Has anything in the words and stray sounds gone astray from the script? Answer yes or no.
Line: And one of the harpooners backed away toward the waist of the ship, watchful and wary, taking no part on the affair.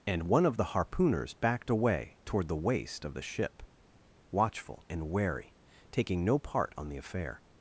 no